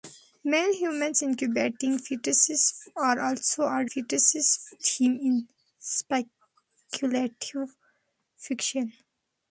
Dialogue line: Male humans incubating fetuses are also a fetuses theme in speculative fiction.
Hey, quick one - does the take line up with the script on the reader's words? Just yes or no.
yes